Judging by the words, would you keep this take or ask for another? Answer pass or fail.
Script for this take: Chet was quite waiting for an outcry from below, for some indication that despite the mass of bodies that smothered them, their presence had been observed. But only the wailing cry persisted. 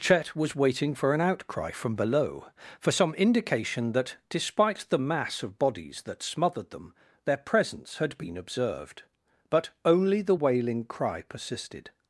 fail